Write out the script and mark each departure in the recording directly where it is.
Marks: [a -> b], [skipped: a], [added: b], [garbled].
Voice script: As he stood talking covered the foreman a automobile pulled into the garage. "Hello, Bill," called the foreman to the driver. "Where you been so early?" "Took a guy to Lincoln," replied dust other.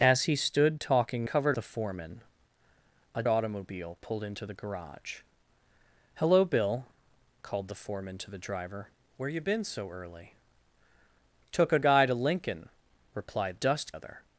As he stood talking covered the foreman a automobile pulled into the garage. "Hello, Bill," called the foreman to the driver. "Where you been so early?" "Took a guy to Lincoln," replied dust other.